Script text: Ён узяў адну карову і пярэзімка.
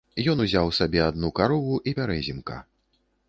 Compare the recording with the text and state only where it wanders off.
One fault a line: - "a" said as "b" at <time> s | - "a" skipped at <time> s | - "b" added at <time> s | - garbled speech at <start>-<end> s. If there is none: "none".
- "сабе" added at 0.8 s